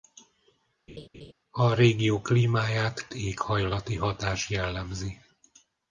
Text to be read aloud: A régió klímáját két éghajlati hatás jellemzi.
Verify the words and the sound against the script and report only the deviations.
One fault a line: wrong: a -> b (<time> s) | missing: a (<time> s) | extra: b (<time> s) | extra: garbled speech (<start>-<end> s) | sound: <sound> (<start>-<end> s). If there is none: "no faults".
sound: laugh (0.9-1.3 s)
missing: két (3.1 s)